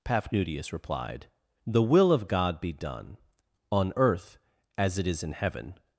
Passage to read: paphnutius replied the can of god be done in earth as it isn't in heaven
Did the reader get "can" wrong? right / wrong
wrong